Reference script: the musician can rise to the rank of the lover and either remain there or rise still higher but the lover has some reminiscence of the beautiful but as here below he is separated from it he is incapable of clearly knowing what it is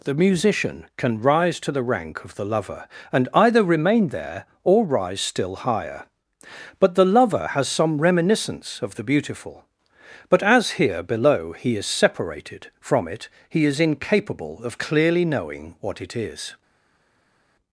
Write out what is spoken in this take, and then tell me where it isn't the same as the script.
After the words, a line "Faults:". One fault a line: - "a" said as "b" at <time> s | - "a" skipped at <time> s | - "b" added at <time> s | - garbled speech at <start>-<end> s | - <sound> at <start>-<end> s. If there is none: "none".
the musician can rise to the rank of the lover and either remain there or rise still higher but the lover has some reminiscence of the beautiful but as here below he is separated from it he is incapable of clearly knowing what it is
Faults:
none